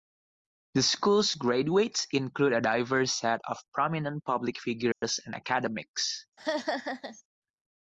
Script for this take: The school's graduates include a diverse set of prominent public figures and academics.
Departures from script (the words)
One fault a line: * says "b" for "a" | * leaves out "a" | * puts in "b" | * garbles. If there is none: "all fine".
all fine